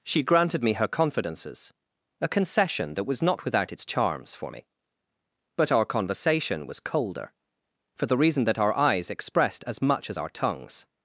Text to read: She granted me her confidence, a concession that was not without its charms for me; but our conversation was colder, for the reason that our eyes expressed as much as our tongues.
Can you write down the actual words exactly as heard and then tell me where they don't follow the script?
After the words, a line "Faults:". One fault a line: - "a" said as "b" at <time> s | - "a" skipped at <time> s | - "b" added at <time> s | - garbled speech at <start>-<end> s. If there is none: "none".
She granted me her confidences, a concession that was not without its charms for me; but our conversation was colder, for the reason that our eyes expressed as much as our tongues.
Faults:
- "confidence" said as "confidences" at 0.9 s